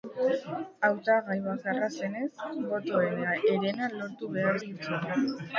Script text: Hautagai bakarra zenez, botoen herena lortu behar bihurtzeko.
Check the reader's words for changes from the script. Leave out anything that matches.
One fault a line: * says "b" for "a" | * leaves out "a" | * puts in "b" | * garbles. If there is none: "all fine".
all fine